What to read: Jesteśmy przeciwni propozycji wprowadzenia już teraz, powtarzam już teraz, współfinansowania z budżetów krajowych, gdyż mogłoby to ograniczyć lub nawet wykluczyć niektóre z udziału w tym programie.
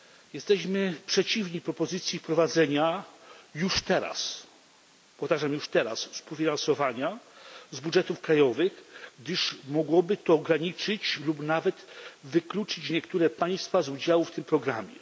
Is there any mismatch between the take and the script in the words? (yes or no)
yes